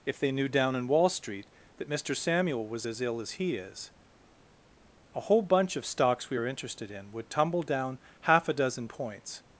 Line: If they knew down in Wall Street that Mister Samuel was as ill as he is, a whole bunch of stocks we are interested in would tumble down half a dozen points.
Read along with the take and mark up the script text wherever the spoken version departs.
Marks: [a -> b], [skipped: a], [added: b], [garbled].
If they knew down in Wall Street that Mister Samuel was as ill as he is, a whole bunch of stocks we are interested in would tumble down half a dozen points.